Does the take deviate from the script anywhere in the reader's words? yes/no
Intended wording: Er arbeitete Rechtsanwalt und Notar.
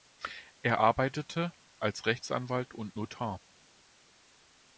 yes